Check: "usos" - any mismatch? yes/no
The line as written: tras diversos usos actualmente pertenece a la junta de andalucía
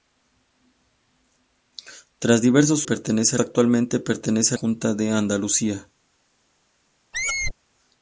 yes